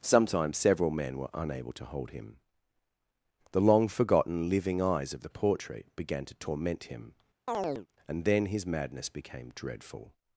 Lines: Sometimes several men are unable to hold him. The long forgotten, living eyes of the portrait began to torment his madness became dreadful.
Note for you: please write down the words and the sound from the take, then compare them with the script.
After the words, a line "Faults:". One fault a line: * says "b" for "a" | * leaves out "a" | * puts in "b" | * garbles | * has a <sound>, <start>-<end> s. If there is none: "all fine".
Sometimes several men were unable to hold him. The long forgotten, living eyes of the portrait began to torment him, and then his madness became dreadful.
Faults:
* says "were" for "are"
* puts in "him and then"
* has a chirp, 7.5-7.9 s